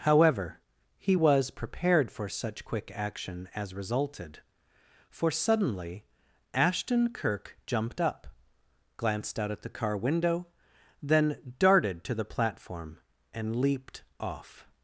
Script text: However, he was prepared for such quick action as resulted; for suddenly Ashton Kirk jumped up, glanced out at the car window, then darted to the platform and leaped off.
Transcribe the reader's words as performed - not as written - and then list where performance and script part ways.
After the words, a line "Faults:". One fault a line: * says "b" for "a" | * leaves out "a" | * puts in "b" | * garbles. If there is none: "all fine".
However, he was prepared for such quick action as resulted; for suddenly Ashton Kirk jumped up, glanced out at the car window, then darted to the platform and leaped off.
Faults:
all fine